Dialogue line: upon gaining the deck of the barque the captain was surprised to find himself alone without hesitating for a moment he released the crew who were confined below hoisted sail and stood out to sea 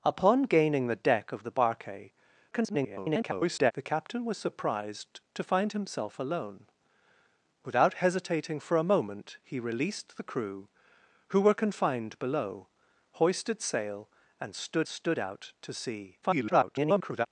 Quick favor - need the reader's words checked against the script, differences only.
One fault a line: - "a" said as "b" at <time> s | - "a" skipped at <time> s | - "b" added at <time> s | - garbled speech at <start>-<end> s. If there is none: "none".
- garbled speech at 2.5-3.7 s
- "stood" added at 14.9 s
- garbled speech at 16.2-17.3 s